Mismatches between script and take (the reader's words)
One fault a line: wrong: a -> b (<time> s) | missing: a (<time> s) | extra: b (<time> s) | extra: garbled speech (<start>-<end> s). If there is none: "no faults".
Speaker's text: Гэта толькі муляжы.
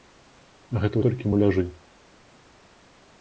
no faults